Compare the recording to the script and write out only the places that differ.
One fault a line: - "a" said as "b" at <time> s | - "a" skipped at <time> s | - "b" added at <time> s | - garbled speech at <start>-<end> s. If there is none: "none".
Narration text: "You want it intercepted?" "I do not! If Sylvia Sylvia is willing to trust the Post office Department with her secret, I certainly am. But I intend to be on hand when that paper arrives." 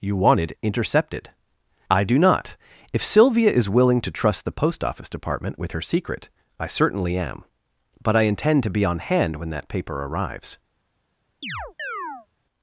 - "Sylvia" skipped at 3.5 s